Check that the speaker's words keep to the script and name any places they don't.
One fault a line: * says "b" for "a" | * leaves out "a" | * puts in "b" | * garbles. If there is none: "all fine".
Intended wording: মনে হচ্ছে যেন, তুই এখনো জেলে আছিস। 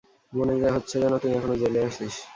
all fine